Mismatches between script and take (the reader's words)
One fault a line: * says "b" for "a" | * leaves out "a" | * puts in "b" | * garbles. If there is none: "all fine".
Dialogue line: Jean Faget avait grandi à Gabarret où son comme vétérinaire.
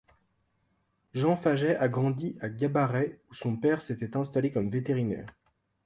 * says "a" for "avait"
* puts in "père s'était installé"